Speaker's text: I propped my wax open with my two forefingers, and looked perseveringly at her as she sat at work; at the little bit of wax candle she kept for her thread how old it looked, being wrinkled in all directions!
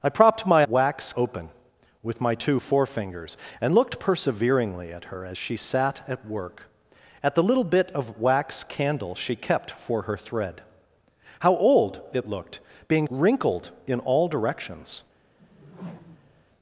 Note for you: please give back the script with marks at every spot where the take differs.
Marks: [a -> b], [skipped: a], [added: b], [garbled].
I propped my wax open with my two forefingers, and looked perseveringly at her as she sat at work; at the little bit of wax candle she kept for her thread how old it looked, being wrinkled in all directions!